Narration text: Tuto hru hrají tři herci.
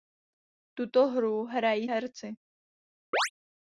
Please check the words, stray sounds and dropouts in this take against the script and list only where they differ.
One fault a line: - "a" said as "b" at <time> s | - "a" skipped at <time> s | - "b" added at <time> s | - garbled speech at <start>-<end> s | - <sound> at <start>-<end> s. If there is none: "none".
- "tři" skipped at 1.9 s
- chirp at 3.1-3.3 s